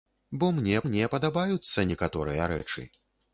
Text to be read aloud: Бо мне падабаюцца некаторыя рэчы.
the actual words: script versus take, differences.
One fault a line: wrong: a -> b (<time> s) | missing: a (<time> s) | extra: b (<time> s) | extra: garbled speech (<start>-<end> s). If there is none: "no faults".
extra: мне (0.9 s)